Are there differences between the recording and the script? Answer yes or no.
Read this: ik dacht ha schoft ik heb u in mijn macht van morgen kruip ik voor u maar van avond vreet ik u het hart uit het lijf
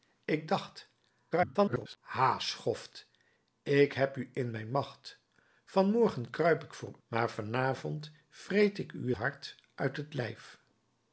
yes